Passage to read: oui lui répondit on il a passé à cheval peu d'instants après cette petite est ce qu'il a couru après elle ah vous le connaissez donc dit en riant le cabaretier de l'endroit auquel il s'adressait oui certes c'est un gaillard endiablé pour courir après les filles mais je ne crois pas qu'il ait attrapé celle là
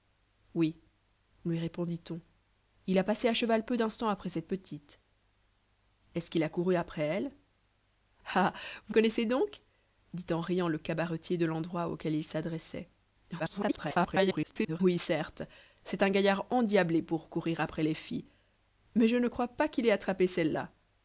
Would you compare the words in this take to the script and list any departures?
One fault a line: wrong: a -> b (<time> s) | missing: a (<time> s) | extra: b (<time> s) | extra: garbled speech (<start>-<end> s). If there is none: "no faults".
missing: le (8.9 s)
extra: garbled speech (13.4-14.8 s)